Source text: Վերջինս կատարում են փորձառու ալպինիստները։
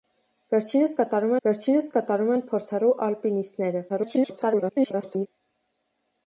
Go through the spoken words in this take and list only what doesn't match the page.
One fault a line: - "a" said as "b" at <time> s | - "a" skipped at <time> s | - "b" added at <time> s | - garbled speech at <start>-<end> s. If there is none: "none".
- "վերջինս կատարում" added at 1.5 s
- garbled speech at 3.9-5.3 s